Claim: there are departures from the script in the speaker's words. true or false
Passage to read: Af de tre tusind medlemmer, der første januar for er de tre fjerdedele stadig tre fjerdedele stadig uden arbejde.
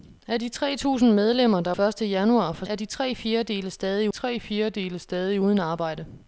false